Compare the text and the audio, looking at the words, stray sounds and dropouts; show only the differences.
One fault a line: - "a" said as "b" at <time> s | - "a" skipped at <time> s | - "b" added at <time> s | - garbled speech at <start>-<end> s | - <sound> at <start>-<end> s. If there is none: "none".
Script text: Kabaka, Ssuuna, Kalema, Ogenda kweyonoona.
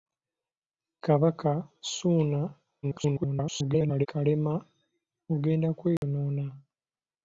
- garbled speech at 2.8-4.1 s
- dropout at 6.0-6.0 s